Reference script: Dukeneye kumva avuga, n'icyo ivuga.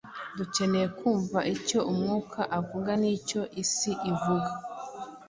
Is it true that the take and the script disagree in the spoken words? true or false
true